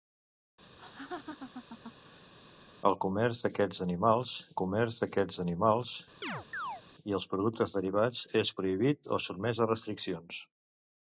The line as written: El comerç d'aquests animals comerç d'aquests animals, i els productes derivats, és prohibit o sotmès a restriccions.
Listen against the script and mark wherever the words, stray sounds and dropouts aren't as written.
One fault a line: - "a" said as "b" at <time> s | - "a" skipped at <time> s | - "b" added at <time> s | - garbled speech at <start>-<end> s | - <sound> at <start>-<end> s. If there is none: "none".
- laugh at 0.8-2.3 s
- chirp at 6.2-6.8 s